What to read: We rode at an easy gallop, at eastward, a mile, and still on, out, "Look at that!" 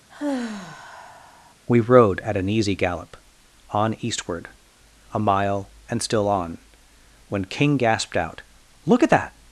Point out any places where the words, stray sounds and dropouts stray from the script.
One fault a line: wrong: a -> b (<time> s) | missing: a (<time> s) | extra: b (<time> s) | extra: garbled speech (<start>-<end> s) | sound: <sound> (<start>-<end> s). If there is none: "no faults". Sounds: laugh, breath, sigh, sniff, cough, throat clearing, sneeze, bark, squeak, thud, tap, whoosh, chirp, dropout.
sound: sigh (0.1-1.5 s)
wrong: at -> on (3.7 s)
extra: when King gasped (7.3 s)